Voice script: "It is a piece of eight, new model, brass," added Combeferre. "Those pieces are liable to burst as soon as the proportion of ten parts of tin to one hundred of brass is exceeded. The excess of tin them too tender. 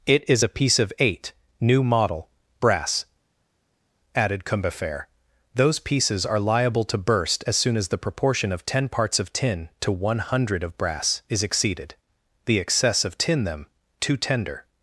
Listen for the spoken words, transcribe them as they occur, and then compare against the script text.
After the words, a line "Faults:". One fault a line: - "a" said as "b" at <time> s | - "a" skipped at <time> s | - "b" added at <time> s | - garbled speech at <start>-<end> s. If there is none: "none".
"It is a piece of eight, new model, brass," added Combeferre. "Those pieces are liable to burst as soon as the proportion of ten parts of tin to one hundred of brass is exceeded. The excess of tin them too tender.
Faults:
none